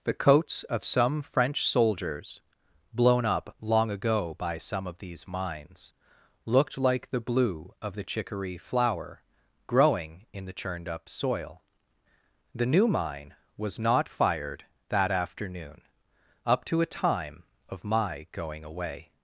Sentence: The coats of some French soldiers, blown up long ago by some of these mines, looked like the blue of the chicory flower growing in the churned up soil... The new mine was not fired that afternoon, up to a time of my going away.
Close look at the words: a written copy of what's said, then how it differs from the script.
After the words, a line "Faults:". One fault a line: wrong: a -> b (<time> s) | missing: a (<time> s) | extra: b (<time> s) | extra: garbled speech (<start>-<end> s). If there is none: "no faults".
The coats of some French soldiers, blown up long ago by some of these mines, looked like the blue of the chicory flower growing in the churned up soil... The new mine was not fired that afternoon, up to a time of my going away.
Faults:
no faults